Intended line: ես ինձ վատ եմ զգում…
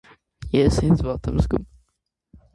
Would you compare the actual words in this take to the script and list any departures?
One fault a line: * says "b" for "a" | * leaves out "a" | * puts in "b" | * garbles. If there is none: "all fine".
all fine